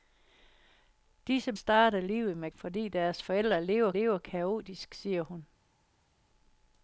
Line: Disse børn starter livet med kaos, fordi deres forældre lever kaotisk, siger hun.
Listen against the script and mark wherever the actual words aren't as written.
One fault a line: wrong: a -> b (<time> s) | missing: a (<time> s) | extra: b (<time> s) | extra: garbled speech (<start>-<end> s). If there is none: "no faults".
missing: børn (1.5 s)
missing: kaos (2.5 s)
extra: lever (3.9 s)